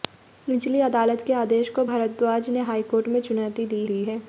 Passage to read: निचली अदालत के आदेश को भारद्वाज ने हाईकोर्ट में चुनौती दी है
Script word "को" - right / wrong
right